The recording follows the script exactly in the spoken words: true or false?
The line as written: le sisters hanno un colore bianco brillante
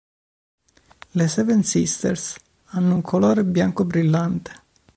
false